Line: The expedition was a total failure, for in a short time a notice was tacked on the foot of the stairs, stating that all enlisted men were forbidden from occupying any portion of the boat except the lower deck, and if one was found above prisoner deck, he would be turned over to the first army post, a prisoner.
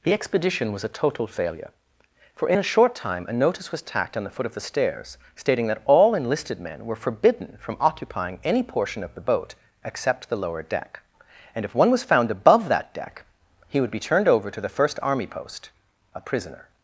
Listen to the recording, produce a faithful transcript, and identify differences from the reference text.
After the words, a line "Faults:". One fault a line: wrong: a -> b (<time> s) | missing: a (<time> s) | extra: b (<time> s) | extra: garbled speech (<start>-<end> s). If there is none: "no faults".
The expedition was a total failure, for in a short time a notice was tacked on the foot of the stairs, stating that all enlisted men were forbidden from occupying any portion of the boat except the lower deck, and if one was found above that deck, he would be turned over to the first army post, a prisoner.
Faults:
wrong: prisoner -> that (12.7 s)